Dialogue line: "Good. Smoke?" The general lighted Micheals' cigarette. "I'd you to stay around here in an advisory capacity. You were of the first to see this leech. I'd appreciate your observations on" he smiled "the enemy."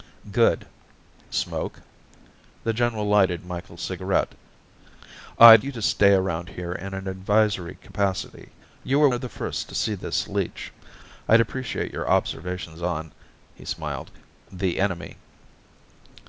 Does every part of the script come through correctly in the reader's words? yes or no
yes